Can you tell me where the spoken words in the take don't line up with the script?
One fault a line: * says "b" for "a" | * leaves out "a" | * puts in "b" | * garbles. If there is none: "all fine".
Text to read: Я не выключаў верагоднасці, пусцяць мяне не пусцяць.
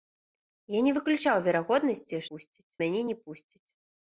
all fine